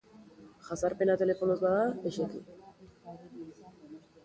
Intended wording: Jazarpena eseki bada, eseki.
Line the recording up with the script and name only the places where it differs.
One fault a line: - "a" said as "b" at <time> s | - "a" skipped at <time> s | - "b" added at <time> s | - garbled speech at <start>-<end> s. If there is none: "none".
- "eseki" said as "telefonoz" at 1.2 s